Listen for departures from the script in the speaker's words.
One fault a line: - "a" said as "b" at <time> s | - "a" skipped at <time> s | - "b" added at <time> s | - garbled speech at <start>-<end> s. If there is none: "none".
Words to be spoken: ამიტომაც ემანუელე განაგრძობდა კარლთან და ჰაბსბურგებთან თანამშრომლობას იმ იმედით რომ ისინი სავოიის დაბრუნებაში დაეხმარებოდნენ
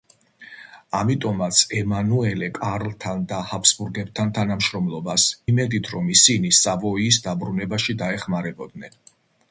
- "განაგრძობდა" skipped at 2.5 s
- "იმ" skipped at 5.3 s